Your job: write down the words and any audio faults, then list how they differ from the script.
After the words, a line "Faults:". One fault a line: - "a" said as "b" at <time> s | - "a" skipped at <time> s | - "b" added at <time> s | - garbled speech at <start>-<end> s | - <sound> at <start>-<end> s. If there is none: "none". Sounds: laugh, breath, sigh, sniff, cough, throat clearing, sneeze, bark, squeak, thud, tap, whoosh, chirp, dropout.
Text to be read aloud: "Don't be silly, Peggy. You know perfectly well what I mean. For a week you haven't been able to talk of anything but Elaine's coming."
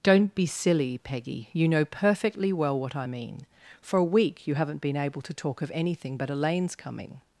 "Don't be silly, Peggy. You know perfectly well what I mean. For a week you haven't been able to talk of anything but Elaine's coming."
Faults:
none